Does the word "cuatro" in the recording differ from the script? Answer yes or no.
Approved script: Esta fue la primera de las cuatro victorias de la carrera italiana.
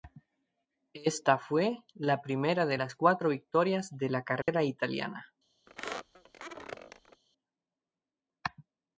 no